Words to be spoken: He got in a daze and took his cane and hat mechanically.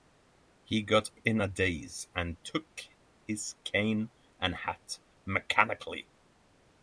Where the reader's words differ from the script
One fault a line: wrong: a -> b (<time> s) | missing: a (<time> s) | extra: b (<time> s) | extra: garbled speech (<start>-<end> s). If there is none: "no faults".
no faults